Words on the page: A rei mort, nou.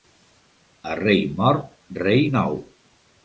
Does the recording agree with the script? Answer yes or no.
no